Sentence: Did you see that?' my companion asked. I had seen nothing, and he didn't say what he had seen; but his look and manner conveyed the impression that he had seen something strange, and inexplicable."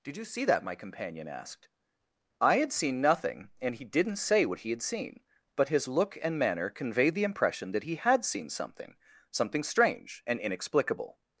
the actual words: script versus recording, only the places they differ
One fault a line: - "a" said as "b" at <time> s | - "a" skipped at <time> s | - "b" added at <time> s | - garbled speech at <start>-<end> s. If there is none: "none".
- "something" added at 9.3 s